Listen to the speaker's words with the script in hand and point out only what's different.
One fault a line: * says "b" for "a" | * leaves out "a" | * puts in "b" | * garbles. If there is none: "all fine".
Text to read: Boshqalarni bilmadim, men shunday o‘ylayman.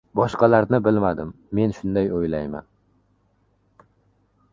all fine